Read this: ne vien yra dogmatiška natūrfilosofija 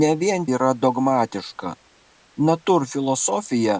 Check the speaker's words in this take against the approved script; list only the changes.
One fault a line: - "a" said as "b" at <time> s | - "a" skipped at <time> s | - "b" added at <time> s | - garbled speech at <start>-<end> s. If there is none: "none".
none